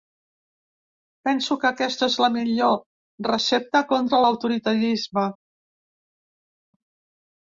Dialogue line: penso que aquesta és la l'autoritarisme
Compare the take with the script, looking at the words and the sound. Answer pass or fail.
fail